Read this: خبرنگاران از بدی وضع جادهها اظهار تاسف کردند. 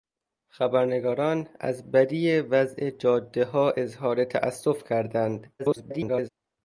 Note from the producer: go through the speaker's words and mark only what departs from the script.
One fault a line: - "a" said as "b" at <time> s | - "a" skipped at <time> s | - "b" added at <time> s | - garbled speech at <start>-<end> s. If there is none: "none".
- garbled speech at 5.6-6.3 s